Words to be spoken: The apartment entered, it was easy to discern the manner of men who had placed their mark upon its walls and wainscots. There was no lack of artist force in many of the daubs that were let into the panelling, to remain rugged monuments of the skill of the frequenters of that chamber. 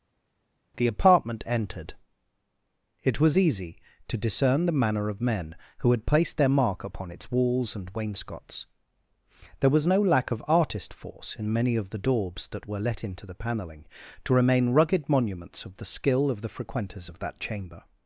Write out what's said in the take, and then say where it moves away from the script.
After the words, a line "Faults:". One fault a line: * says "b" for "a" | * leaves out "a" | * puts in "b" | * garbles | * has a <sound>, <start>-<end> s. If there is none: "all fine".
The apartment entered, it was easy to discern the manner of men who had placed their mark upon its walls and wainscots. There was no lack of artist force in many of the daubs that were let into the panelling, to remain rugged monuments of the skill of the frequenters of that chamber.
Faults:
all fine